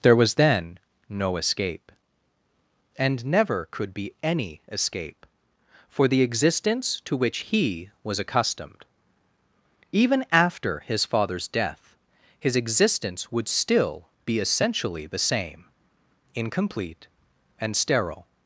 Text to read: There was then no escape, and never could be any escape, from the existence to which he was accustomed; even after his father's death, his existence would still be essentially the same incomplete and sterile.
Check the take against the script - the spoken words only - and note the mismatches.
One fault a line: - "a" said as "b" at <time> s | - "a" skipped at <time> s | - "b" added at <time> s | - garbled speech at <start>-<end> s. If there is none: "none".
- "from" said as "for" at 5.9 s